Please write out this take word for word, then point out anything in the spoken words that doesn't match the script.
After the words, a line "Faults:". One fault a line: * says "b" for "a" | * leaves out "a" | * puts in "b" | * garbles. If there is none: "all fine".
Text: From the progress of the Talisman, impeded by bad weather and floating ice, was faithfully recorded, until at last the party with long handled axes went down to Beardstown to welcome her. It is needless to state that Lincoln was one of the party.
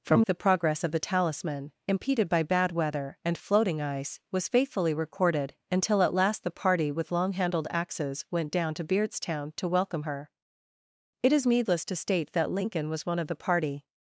From the progress of the Talisman, impeded by bad weather and floating ice, was faithfully recorded, until at last the party with long handled axes went down to Beardstown to welcome her. It is needless to state that Lincoln was one of the party.
Faults:
all fine